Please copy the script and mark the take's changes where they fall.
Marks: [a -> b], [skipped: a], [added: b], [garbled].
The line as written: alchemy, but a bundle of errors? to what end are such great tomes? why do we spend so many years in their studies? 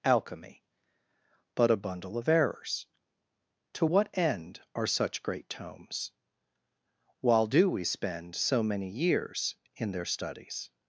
alchemy, but a bundle of errors? to what end are such great tomes? [why -> while] do we spend so many years in their studies?